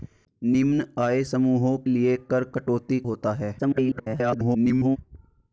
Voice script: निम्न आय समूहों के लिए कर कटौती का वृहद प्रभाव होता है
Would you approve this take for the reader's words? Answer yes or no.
no